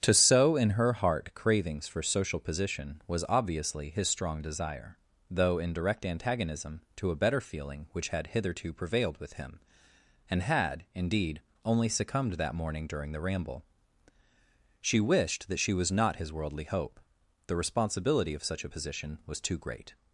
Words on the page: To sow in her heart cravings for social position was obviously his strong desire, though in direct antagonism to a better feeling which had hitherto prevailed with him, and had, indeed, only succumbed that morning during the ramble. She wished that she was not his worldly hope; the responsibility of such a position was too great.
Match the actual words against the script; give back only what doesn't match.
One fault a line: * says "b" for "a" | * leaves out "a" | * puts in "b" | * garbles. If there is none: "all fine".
all fine